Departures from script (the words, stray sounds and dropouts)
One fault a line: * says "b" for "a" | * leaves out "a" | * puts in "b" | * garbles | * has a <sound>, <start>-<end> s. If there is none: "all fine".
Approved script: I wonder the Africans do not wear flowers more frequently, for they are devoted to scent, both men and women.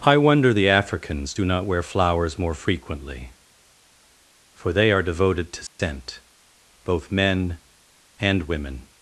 * has a dropout, 5.7-5.8 s